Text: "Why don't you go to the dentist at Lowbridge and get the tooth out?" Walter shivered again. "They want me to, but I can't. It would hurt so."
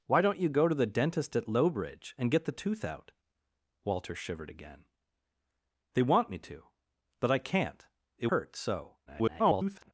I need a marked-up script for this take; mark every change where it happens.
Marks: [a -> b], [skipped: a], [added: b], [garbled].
"Why don't you go to the dentist at Lowbridge and get the tooth out?" Walter shivered again. "They want me to, but I can't. It [skipped: would] hurt so." [garbled]